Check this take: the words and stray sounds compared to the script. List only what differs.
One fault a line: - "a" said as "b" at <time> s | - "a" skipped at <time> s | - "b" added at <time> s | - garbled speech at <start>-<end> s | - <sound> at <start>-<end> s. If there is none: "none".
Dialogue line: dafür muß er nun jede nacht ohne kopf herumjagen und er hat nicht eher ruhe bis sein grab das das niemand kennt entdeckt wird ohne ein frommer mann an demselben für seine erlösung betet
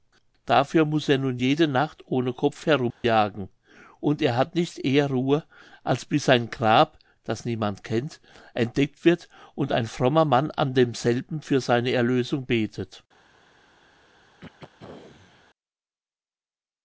- dropout at 2.9-3.0 s
- "als" added at 5.8 s
- "das" skipped at 7.4 s
- "ohne" said as "und" at 9.6 s
- throat clearing at 14.4-15.4 s